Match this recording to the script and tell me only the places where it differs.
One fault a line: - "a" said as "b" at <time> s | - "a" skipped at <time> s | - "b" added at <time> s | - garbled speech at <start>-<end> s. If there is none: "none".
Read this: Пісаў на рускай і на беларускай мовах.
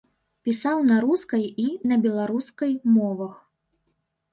none